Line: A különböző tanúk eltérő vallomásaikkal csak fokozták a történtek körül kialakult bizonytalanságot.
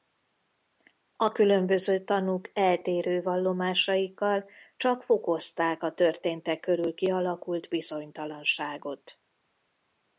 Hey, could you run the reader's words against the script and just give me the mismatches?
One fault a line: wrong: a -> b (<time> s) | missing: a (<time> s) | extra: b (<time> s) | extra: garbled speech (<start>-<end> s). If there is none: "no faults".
no faults